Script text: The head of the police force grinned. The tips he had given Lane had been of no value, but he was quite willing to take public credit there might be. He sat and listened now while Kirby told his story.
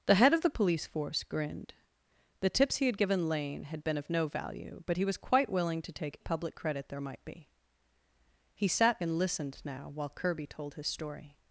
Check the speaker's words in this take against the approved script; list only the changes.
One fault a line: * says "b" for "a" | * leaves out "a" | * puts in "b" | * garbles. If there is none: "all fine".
all fine